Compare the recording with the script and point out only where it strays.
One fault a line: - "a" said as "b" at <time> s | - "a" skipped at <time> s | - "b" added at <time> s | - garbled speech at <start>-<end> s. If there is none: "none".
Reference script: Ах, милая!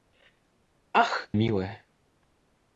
none